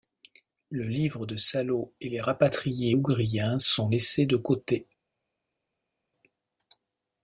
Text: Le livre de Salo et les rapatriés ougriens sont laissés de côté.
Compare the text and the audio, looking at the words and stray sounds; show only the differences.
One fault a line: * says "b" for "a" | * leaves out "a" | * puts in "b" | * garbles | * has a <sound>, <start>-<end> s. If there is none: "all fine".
all fine